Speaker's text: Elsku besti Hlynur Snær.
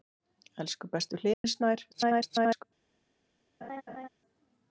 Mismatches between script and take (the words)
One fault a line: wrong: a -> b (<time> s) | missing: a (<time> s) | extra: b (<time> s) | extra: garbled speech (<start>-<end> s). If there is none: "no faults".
extra: garbled speech (1.9-2.6 s)